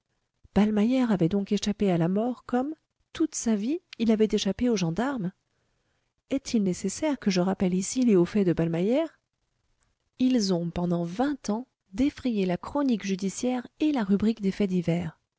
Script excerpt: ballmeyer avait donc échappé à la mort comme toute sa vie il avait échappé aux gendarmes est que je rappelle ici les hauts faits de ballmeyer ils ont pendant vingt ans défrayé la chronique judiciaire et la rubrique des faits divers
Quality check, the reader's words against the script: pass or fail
fail